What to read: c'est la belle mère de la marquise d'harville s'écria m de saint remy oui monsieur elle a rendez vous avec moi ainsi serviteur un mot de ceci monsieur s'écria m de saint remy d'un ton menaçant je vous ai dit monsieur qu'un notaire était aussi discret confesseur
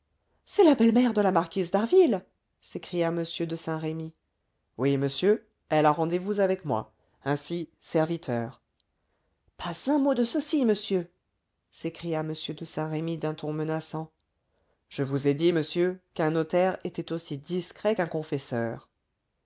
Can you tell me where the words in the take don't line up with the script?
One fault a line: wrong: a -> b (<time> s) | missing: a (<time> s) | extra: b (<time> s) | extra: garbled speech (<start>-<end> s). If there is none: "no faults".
extra: pas (9.6 s)
extra: qu'un (17.9 s)